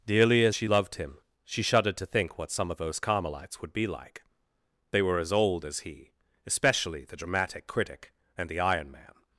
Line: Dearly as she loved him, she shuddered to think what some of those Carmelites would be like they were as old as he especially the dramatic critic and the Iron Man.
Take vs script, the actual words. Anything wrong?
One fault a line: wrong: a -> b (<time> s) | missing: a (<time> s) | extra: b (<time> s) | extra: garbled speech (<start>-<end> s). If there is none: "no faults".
no faults